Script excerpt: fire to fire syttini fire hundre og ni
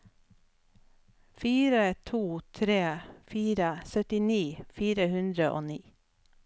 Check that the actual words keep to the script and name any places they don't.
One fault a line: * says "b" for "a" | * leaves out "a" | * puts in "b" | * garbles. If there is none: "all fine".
* puts in "tre"